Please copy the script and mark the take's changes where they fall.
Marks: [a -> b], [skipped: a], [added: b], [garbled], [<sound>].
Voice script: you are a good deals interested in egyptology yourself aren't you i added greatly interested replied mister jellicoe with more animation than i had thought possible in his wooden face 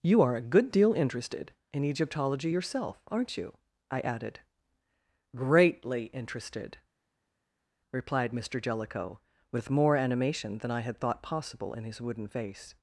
you are a good [deals -> deal] interested in egyptology yourself aren't you i added greatly interested replied mister jellicoe with more animation than i had thought possible in his wooden face